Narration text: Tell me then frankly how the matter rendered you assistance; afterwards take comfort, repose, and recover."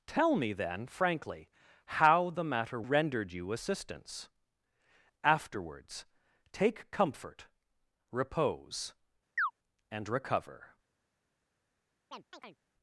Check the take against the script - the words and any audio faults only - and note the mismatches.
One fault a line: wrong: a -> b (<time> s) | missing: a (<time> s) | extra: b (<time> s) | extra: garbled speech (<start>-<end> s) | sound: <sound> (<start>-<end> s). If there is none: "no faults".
sound: chirp (9.4-9.5 s)
sound: chirp (12.1-12.6 s)